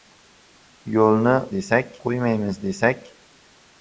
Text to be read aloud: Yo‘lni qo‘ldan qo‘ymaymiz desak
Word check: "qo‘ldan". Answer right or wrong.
wrong